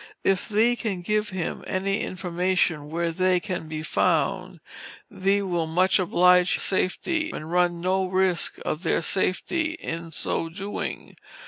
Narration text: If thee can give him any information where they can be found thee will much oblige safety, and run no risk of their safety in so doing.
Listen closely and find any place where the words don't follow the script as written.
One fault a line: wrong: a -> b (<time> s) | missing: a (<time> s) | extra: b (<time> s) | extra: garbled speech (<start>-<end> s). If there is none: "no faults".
no faults